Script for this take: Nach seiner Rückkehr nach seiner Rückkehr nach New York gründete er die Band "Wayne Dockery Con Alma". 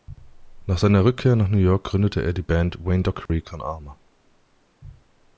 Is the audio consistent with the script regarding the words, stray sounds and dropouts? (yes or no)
no